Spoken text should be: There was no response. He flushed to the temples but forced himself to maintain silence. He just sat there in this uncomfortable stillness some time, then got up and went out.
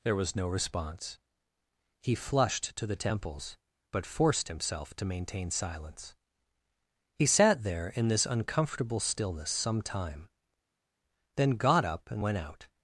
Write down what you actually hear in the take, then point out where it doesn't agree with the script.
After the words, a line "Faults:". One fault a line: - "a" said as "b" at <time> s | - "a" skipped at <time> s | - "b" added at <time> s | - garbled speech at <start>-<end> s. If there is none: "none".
There was no response. He flushed to the temples but forced himself to maintain silence. He sat there in this uncomfortable stillness some time, then got up and went out.
Faults:
- "just" skipped at 7.2 s